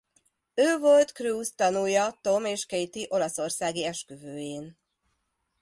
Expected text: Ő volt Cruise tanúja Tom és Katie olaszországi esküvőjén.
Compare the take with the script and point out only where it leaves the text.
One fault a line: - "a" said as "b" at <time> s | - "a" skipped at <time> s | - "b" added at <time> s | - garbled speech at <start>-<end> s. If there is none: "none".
none